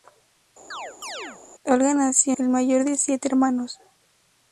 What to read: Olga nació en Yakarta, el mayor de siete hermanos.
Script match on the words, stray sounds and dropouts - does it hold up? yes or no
no